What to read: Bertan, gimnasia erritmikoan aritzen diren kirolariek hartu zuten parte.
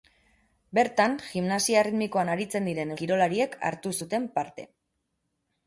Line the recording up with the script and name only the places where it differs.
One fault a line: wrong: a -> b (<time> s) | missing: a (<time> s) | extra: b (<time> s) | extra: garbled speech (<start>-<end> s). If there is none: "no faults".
no faults